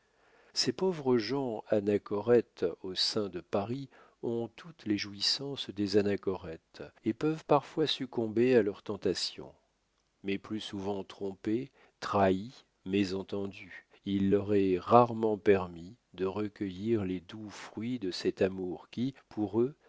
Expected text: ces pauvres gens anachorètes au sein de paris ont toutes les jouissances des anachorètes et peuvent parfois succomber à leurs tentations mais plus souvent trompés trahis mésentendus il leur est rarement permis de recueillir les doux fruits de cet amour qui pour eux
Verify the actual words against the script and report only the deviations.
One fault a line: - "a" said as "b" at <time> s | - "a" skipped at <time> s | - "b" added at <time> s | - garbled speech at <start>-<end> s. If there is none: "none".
none